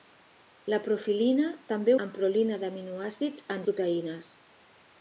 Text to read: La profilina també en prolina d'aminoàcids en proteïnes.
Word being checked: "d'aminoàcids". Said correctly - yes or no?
yes